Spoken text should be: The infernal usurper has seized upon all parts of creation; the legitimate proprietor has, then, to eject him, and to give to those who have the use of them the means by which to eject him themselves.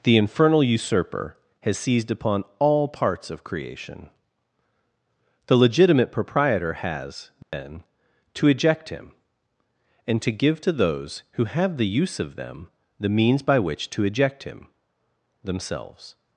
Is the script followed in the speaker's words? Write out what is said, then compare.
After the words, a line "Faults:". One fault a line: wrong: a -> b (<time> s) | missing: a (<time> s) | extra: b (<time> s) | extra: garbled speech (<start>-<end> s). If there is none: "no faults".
The infernal usurper has seized upon all parts of creation; the legitimate proprietor has, then, to eject him, and to give to those who have the use of them the means by which to eject him themselves.
Faults:
no faults